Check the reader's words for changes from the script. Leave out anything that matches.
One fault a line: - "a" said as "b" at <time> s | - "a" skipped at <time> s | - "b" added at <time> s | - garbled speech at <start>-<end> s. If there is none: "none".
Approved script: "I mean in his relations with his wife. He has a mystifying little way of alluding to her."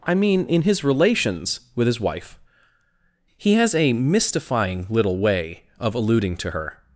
none